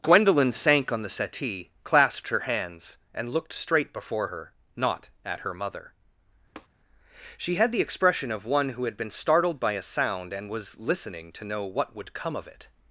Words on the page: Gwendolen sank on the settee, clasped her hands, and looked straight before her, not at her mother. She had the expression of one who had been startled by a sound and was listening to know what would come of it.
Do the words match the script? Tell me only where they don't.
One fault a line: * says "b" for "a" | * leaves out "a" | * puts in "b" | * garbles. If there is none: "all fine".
all fine